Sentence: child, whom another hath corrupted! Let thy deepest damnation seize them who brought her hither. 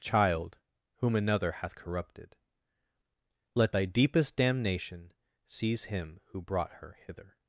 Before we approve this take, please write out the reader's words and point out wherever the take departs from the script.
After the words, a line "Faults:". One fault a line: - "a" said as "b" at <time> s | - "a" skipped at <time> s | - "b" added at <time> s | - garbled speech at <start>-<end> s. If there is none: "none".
child, whom another hath corrupted! Let thy deepest damnation seize him who brought her hither.
Faults:
- "them" said as "him" at 5.8 s